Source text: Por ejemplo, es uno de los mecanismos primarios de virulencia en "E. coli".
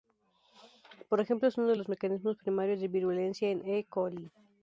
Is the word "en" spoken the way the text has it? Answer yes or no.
yes